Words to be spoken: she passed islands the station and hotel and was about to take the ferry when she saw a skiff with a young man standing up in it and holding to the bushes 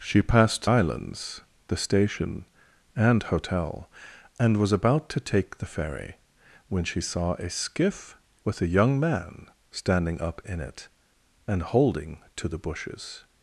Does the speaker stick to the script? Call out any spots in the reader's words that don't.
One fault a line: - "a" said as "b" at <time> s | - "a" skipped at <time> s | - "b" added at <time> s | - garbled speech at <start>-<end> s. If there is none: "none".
none